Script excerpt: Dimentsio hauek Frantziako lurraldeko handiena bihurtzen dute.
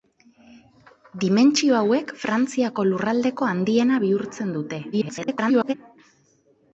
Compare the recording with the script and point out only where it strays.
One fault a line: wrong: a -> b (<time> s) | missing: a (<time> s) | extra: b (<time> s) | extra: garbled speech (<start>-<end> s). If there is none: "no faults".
extra: garbled speech (4.9-5.7 s)